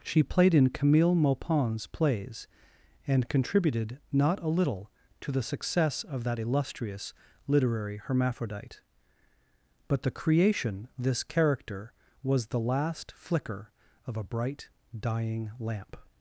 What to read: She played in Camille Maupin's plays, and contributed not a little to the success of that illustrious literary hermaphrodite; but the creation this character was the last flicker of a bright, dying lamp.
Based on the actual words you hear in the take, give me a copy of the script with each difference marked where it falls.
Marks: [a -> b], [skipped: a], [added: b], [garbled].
She played in Camille Maupin's plays, and contributed not a little to the success of that illustrious literary hermaphrodite; but the creation this character was the last flicker of a bright, dying lamp.